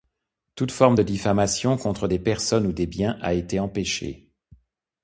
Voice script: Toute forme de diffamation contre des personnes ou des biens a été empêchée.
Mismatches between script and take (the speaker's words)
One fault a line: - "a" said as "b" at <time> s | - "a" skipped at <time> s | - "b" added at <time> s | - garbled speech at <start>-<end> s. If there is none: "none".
none